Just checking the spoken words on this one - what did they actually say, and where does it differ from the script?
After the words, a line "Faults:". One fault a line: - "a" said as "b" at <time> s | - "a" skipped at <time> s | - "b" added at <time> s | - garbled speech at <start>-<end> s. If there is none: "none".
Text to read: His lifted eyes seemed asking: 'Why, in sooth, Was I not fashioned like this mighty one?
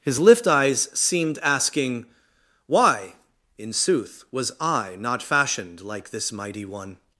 His lift eyes seemed asking: 'Why, in sooth, Was I not fashioned like this mighty one?
Faults:
- "lifted" said as "lift" at 0.2 s